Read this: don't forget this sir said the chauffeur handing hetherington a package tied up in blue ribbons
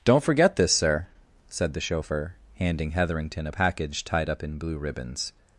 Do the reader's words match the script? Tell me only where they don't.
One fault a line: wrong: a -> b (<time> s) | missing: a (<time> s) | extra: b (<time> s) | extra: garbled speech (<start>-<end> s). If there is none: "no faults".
no faults